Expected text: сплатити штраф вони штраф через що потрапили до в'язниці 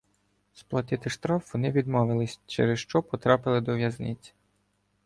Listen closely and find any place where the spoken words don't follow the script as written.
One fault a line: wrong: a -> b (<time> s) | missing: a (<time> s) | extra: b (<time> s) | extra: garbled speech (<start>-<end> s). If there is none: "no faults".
wrong: штраф -> відмовились (1.7 s)